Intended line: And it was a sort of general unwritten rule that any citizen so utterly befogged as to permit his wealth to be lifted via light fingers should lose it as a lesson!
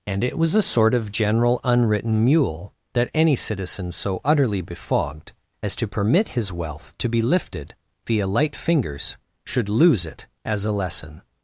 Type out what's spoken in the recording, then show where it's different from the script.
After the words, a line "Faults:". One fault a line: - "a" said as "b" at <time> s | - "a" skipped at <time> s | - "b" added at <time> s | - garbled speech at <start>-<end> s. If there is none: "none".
And it was a sort of general unwritten mule that any citizen so utterly befogged as to permit his wealth to be lifted via light fingers should lose it as a lesson!
Faults:
- "rule" said as "mule" at 2.2 s